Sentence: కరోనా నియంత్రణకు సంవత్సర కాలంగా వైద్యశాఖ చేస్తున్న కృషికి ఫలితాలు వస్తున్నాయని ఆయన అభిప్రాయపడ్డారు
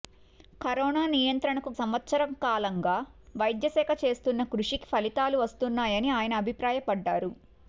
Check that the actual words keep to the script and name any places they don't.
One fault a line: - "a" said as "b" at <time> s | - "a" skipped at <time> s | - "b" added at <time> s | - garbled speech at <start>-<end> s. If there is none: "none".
none